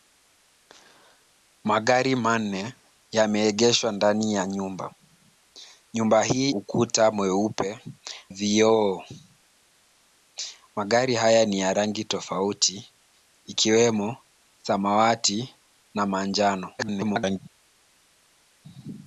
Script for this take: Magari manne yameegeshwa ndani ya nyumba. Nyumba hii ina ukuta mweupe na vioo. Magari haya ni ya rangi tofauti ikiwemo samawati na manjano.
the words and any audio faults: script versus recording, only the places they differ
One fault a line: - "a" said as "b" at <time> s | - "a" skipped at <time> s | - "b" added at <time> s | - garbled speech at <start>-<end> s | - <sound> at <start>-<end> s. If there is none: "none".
- "ina" skipped at 6.5 s
- "na" skipped at 7.8 s
- garbled speech at 16.8-17.4 s